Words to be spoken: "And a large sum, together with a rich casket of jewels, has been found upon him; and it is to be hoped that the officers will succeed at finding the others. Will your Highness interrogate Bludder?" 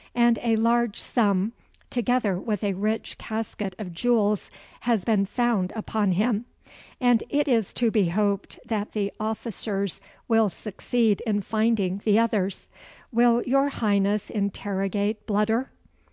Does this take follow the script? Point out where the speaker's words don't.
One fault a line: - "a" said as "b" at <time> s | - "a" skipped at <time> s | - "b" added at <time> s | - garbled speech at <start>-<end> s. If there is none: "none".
- "at" said as "in" at 11.3 s